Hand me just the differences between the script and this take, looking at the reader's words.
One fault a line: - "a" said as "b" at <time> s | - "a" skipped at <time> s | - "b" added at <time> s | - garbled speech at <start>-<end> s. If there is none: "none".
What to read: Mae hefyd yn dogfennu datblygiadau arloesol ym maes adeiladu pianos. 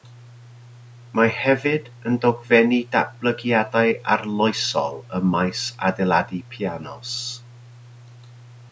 none